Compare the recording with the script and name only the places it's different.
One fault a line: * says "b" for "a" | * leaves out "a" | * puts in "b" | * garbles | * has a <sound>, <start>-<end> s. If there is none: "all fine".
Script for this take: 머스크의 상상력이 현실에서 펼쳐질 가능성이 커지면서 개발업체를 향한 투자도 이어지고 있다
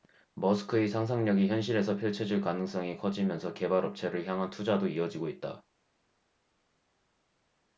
all fine